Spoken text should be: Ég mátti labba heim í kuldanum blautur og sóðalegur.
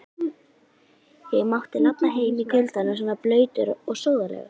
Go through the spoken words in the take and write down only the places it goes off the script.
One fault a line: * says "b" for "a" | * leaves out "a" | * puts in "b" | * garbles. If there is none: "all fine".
* puts in "svona"